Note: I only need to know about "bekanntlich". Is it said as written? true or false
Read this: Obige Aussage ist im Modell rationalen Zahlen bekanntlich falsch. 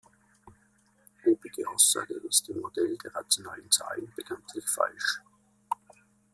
true